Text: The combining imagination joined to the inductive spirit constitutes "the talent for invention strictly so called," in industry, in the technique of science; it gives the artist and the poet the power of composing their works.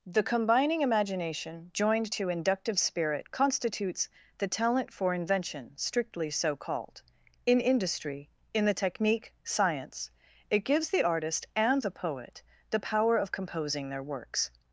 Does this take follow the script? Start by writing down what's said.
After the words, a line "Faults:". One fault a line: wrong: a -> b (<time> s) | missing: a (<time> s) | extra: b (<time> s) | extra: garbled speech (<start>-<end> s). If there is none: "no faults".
The combining imagination joined to inductive spirit constitutes "the talent for invention strictly so called," in industry, in the technique science; it gives the artist and the poet the power of composing their works.
Faults:
missing: the (2.3 s)
missing: of (9.3 s)